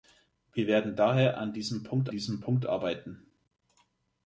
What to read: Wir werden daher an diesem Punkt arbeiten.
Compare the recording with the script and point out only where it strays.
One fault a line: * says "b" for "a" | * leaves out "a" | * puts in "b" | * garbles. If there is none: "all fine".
* puts in "diesem Punkt"